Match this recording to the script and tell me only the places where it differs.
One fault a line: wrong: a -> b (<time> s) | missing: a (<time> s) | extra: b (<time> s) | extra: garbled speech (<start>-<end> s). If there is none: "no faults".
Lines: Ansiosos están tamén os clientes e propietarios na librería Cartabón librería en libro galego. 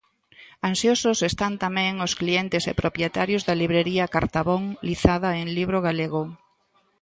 wrong: na -> da (3.5 s)
wrong: librería -> lizada (4.9 s)